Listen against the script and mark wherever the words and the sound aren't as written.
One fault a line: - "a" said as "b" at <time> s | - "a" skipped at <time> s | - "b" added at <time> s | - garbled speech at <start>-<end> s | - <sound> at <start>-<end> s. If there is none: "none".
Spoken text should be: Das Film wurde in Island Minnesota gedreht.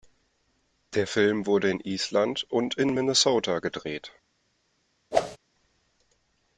- "Das" said as "Der" at 0.9 s
- "und in" added at 2.5 s
- whoosh at 5.1-5.4 s